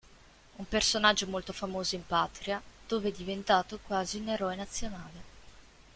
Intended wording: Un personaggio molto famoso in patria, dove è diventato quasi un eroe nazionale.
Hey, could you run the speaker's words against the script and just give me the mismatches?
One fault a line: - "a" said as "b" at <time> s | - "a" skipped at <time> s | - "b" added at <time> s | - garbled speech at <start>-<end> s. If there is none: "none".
none